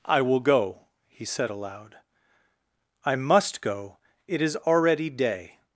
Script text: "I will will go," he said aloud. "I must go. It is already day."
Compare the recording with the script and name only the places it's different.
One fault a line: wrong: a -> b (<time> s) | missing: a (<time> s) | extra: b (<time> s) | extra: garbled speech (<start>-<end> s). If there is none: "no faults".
missing: will (0.4 s)